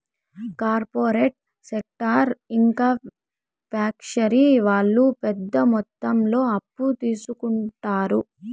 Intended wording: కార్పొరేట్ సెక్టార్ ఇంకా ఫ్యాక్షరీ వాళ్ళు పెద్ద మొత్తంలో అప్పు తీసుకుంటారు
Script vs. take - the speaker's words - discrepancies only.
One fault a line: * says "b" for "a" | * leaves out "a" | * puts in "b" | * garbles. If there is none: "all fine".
all fine